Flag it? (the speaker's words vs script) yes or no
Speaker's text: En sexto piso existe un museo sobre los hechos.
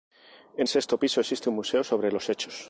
no